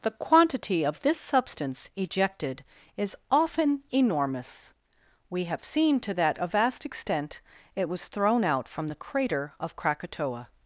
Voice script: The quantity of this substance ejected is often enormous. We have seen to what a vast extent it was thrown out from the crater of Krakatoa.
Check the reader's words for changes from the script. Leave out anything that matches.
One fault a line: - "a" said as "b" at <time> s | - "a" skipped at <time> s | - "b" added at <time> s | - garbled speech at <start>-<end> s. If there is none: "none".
- "what" said as "that" at 6.1 s